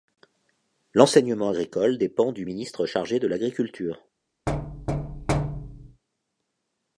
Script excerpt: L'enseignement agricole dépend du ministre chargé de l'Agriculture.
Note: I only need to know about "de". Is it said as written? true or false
true